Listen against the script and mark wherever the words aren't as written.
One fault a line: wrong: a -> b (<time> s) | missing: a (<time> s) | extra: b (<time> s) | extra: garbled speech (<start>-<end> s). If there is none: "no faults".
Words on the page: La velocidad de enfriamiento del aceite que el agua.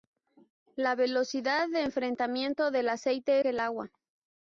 no faults